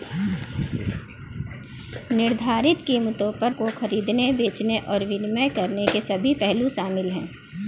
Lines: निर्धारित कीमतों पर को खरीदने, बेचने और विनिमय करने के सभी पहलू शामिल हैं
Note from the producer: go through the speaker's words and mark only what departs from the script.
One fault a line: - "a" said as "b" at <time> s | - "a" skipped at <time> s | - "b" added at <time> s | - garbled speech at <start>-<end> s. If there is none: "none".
none